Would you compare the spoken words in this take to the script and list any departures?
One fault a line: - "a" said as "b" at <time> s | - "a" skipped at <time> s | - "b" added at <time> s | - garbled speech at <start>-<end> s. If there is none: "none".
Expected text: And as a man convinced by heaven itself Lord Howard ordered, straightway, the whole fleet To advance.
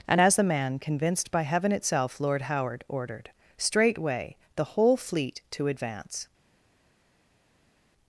- "a" said as "the" at 0.4 s